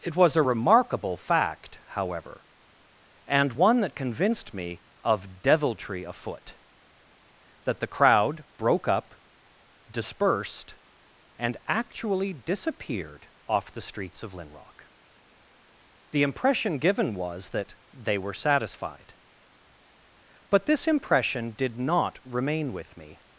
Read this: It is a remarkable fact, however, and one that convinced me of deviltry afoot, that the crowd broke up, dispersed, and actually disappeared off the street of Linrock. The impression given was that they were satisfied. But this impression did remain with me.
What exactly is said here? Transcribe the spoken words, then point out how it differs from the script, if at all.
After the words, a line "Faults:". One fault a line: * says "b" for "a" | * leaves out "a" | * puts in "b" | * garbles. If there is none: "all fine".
It was a remarkable fact, however, and one that convinced me of deviltry afoot, that the crowd broke up, dispersed, and actually disappeared off the streets of Linrock. The impression given was that they were satisfied. But this impression did not remain with me.
Faults:
* says "was" for "is"
* says "streets" for "street"
* puts in "not"